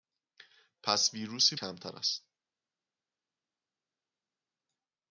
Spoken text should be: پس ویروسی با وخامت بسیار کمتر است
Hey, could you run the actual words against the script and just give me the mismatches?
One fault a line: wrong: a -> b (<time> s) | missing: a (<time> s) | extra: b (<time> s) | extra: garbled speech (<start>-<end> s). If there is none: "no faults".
missing: با وخامت بسیار (1.6 s)